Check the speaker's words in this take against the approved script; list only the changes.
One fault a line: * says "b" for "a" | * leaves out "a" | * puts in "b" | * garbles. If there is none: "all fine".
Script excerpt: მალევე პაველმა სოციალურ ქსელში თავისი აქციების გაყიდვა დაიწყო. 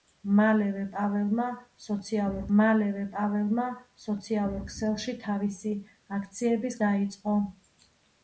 * puts in "მალევე პაველმა სოციალურ"
* leaves out "გაყიდვა"